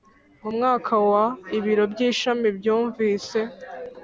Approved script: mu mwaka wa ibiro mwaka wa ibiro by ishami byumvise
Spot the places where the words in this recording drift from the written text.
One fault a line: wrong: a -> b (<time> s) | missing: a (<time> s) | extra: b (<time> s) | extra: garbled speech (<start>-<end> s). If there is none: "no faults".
missing: mwaka wa ibiro (1.8 s)